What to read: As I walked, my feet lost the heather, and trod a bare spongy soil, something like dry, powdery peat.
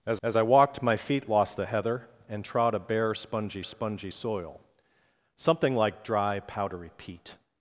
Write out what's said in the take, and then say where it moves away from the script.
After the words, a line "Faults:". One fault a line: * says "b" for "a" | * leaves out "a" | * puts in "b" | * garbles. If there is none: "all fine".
As as I walked, my feet lost the heather, and trod a bare spongy spongy soil, something like dry, powdery peat.
Faults:
* puts in "as"
* puts in "spongy"